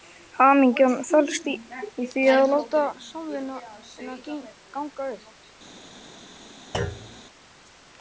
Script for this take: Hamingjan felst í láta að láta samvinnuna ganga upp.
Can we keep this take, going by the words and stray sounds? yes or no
no